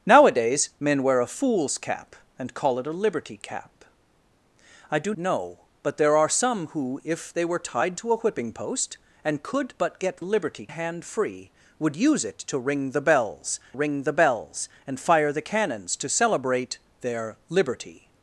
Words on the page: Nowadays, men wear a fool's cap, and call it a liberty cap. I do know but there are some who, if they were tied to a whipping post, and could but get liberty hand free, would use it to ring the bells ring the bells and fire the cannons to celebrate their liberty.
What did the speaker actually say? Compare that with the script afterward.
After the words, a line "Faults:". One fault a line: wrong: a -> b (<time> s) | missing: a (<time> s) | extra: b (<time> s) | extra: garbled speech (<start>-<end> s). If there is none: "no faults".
Nowadays, men wear a fool's cap, and call it a liberty cap. I do know but there are some who, if they were tied to a whipping post, and could but get liberty hand free, would use it to ring the bells ring the bells and fire the cannons to celebrate their liberty.
Faults:
no faults